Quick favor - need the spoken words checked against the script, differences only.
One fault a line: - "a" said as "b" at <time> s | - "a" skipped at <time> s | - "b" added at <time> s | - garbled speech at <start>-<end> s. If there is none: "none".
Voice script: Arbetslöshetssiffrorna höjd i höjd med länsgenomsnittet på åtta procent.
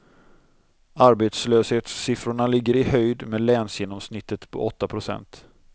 - "höjd" said as "ligger" at 2.5 s